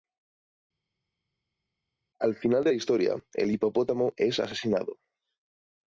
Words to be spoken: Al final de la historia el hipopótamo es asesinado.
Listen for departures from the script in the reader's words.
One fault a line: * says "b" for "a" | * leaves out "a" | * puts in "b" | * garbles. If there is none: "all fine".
all fine